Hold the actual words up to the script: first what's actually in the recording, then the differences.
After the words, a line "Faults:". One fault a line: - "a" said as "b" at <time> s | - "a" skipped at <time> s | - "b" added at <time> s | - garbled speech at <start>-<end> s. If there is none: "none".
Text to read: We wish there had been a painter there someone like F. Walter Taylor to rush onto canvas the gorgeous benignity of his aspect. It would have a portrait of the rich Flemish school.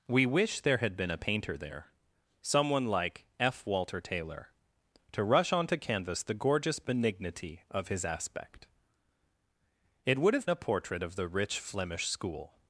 We wish there had been a painter there someone like F. Walter Taylor to rush onto canvas the gorgeous benignity of his aspect. It would have a portrait of the rich Flemish school.
Faults:
none